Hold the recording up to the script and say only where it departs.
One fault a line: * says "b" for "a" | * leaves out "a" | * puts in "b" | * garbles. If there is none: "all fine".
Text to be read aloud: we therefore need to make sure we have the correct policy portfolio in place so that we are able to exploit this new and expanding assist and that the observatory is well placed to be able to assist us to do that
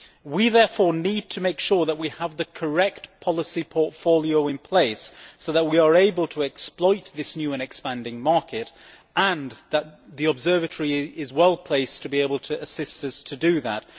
* puts in "that"
* says "market" for "assist"